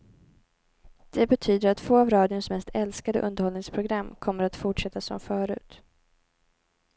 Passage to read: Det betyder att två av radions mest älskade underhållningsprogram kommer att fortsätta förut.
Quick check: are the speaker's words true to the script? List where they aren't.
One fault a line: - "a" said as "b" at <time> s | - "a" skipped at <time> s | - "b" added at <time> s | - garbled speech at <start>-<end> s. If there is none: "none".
- "som" added at 5.0 s